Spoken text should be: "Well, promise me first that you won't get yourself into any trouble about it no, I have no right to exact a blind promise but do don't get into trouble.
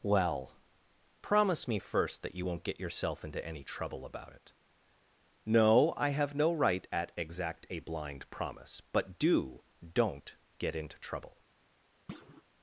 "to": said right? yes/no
no